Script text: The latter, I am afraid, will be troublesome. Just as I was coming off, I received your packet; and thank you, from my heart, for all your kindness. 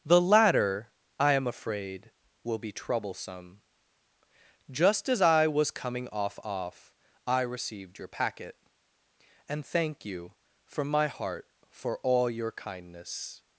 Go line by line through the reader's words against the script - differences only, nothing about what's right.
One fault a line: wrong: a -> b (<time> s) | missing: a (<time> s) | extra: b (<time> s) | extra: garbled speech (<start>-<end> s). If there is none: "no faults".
extra: off (6.4 s)